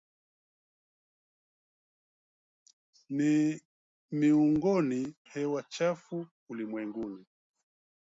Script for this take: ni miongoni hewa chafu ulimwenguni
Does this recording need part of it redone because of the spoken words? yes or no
no